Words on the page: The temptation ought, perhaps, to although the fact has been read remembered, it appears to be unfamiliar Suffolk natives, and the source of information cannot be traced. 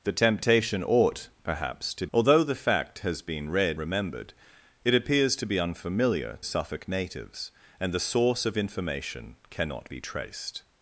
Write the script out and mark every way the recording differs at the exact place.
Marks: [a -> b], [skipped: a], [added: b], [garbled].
The temptation ought, perhaps, to although the fact has been read remembered, it appears to be unfamiliar Suffolk natives, and the source of information cannot be traced.